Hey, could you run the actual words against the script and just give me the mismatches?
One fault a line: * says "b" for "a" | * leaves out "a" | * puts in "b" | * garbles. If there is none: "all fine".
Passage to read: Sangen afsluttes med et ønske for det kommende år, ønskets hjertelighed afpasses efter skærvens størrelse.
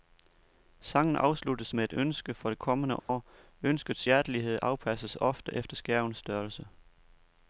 * puts in "ofte"